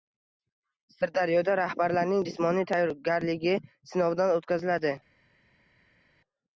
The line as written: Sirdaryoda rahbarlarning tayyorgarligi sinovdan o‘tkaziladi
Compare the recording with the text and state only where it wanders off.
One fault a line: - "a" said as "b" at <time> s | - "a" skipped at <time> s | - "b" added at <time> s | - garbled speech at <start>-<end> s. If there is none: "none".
- "jismoniy" added at 2.3 s